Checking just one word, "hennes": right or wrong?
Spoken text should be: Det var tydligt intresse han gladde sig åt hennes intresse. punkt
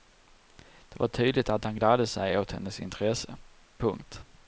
right